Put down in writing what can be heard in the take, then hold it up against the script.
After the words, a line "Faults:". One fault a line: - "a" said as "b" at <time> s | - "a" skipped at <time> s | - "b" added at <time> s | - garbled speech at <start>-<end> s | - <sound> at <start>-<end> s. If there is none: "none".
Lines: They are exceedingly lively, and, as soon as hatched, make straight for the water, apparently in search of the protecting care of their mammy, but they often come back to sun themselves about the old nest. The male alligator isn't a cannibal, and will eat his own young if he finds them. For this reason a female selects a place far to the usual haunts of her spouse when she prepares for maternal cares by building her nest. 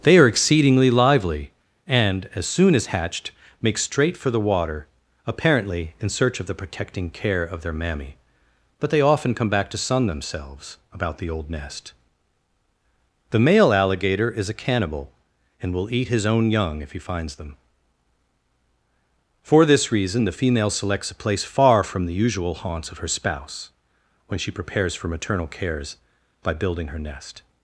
They are exceedingly lively, and, as soon as hatched, make straight for the water, apparently in search of the protecting care of their mammy, but they often come back to sun themselves about the old nest. The male alligator is a cannibal, and will eat his own young if he finds them. For this reason the female selects a place far from the usual haunts of her spouse when she prepares for maternal cares by building her nest.
Faults:
- "isn't" said as "is" at 14.3 s
- "a" said as "the" at 20.2 s
- "to" said as "from" at 21.8 s